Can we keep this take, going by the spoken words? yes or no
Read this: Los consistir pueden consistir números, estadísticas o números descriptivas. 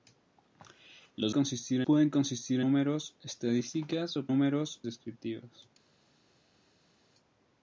yes